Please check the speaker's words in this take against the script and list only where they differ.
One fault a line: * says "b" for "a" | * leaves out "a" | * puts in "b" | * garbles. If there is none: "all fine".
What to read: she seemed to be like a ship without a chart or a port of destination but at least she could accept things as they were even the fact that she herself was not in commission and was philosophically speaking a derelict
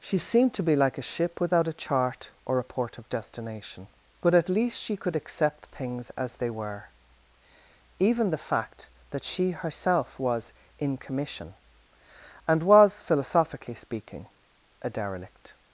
* leaves out "not"